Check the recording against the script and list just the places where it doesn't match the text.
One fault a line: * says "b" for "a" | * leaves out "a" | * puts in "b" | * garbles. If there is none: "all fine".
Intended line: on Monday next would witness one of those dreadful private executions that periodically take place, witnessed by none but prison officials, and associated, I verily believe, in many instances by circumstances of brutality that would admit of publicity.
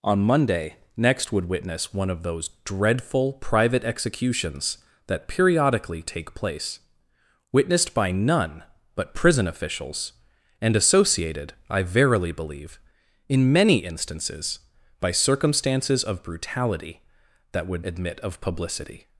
all fine